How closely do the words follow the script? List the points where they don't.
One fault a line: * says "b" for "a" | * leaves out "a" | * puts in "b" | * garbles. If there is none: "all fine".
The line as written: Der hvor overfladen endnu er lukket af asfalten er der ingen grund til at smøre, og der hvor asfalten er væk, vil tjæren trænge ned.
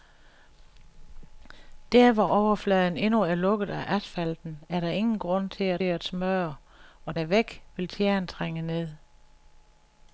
* puts in "at"
* leaves out "der hvor asfalten"